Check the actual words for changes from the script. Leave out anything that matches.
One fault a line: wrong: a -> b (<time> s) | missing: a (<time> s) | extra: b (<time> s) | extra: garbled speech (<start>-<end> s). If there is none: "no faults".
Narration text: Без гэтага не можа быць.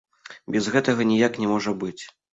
extra: ніяк (1.1 s)